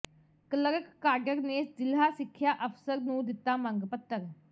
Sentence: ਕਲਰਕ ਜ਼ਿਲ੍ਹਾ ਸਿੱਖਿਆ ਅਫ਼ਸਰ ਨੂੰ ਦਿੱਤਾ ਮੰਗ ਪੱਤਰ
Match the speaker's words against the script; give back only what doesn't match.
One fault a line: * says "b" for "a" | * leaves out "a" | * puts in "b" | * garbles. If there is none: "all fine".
* puts in "ਕਾਡਰ ਨੇ"